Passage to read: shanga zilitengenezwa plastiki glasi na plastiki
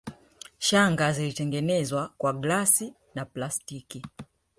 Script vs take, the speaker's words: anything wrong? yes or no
yes